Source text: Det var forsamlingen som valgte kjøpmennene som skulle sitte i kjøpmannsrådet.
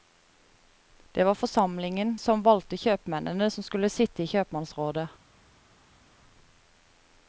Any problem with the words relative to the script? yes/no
no